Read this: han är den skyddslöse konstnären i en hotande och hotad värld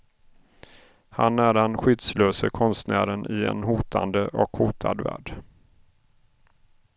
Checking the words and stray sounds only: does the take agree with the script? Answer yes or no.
yes